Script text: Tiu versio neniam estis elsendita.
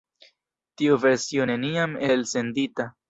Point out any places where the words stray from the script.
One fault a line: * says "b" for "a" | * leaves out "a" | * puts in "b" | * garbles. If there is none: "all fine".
* leaves out "estis"